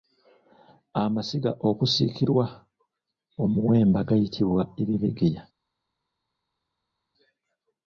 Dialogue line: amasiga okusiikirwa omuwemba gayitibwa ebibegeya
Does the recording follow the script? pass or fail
pass